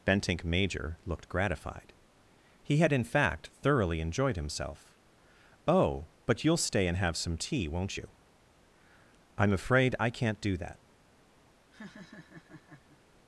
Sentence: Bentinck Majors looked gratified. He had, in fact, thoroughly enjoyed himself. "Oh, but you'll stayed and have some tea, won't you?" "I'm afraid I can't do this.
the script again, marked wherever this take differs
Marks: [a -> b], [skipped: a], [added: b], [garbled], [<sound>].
Bentinck [Majors -> Major] looked gratified. He had, in fact, thoroughly enjoyed himself. "Oh, but you'll [stayed -> stay] and have some tea, won't you?" "I'm afraid I can't do [this. -> that] [laugh]